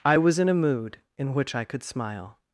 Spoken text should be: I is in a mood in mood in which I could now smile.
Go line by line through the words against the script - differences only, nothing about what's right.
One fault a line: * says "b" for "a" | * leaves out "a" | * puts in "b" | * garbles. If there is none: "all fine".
* says "was" for "is"
* leaves out "mood in"
* leaves out "now"